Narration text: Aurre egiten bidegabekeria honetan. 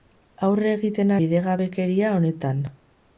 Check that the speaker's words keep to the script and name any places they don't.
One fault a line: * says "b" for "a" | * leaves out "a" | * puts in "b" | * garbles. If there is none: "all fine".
all fine